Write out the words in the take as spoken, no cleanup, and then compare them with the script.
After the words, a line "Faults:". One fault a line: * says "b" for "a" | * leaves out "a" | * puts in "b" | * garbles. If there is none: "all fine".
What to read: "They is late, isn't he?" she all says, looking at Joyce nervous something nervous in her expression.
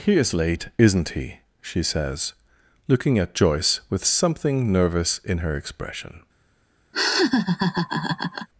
"He is late, isn't he?" she says, looking at Joyce with something nervous in her expression.
Faults:
* says "He" for "They"
* leaves out "all"
* says "with" for "nervous"